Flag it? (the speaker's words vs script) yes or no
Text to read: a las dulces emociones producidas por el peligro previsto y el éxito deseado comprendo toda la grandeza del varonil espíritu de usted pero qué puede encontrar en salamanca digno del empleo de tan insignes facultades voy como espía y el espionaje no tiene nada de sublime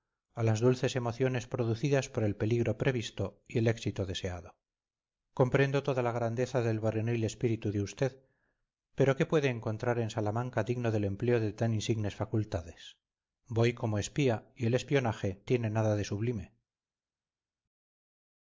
yes